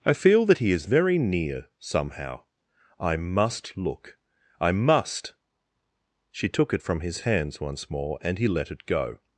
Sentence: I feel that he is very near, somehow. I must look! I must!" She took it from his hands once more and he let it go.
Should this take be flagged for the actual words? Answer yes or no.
no